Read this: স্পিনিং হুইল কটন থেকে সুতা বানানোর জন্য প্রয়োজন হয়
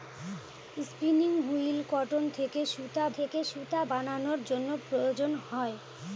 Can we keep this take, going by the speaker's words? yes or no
no